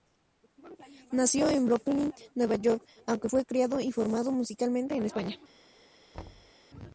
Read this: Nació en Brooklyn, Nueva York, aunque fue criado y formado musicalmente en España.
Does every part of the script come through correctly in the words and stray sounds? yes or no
no